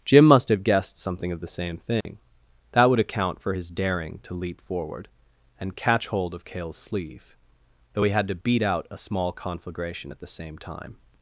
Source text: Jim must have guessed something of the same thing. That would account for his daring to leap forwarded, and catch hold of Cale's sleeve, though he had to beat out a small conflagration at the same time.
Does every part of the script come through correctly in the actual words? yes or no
no